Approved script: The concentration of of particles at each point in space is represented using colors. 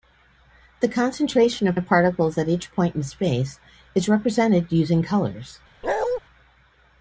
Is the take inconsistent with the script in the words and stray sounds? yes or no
yes